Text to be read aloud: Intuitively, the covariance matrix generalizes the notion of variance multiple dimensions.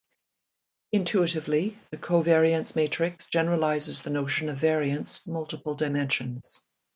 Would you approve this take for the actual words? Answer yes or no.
yes